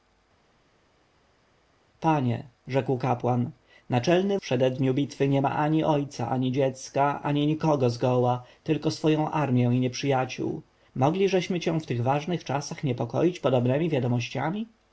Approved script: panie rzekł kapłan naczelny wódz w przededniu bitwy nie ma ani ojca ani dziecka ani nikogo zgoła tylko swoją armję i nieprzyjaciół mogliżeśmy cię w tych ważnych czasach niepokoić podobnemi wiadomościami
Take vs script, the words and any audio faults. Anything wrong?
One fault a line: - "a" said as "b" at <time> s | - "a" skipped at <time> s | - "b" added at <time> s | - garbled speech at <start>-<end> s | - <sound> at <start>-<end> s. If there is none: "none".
- "wódz" skipped at 4.4 s